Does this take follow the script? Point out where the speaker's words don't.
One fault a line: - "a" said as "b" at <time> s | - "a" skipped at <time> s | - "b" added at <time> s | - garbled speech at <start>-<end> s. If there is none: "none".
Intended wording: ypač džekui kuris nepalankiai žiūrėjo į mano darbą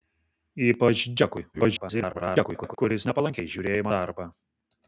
- garbled speech at 1.5-2.8 s
- "mano" skipped at 3.9 s